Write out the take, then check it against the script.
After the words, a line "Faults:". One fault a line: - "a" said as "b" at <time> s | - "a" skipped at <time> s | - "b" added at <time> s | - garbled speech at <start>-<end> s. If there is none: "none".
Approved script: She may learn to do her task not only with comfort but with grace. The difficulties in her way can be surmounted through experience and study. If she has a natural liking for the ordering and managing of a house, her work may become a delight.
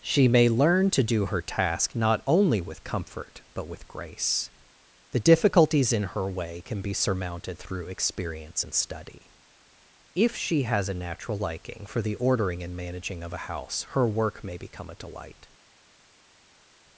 She may learn to do her task not only with comfort but with grace. The difficulties in her way can be surmounted through experience and study. If she has a natural liking for the ordering and managing of a house, her work may become a delight.
Faults:
none